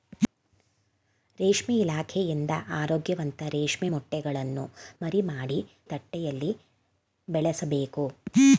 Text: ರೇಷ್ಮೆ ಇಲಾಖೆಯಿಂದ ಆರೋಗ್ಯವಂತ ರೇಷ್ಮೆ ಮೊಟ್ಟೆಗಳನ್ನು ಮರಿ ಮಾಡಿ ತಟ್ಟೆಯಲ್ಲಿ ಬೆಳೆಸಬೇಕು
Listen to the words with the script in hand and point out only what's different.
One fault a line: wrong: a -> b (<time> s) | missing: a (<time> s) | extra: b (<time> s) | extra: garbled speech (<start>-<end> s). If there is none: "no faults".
no faults